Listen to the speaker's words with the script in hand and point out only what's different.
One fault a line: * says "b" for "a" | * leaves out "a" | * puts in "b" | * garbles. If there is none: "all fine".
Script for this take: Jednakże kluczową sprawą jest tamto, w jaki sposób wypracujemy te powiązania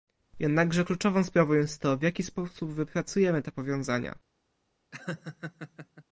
* says "to" for "tamto"